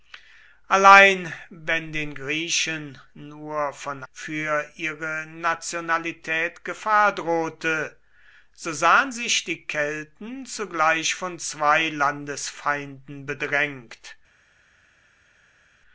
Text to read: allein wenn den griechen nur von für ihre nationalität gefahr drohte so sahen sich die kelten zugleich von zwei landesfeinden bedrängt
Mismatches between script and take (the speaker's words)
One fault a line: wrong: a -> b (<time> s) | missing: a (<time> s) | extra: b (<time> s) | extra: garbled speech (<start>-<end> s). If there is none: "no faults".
no faults